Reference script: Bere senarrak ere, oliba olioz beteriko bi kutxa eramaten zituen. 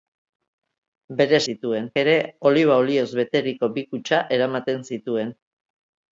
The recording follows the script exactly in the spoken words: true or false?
false